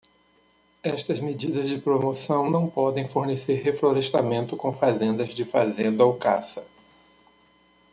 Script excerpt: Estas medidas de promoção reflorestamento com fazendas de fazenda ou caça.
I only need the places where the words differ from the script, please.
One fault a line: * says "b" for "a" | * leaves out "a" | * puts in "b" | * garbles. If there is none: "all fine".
* puts in "não podem fornecer"